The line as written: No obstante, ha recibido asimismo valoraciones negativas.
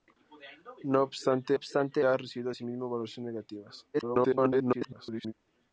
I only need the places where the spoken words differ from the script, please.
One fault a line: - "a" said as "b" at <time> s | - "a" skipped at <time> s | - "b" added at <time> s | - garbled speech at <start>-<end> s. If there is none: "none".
- "obstante" added at 1.5 s
- garbled speech at 3.9-5.3 s